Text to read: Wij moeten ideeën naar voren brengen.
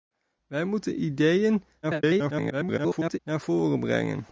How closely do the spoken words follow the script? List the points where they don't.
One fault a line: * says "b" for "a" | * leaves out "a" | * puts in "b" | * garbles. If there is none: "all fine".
* garbles